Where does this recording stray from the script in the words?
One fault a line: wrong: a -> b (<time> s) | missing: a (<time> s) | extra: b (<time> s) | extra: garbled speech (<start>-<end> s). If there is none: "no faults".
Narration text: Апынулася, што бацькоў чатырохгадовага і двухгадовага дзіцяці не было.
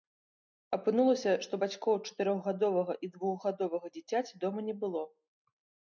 extra: дома (4.5 s)